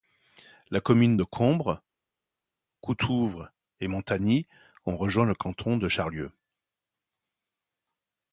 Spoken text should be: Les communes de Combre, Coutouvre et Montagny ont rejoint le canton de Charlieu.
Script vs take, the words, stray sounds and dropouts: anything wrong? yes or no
no